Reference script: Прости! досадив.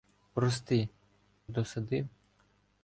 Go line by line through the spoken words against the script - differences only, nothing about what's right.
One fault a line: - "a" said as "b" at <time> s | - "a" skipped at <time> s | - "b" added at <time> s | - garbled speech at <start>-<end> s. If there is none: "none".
none